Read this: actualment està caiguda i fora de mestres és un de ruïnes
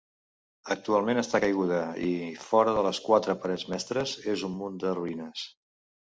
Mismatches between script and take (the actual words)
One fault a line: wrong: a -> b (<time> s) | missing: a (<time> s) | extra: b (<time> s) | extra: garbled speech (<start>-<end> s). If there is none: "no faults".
extra: les quatre parets (2.9 s)
extra: munt (4.6 s)